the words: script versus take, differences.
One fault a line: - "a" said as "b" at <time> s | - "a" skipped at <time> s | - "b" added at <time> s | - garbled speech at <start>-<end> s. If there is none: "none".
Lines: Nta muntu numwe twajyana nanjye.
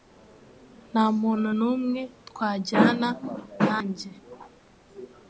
none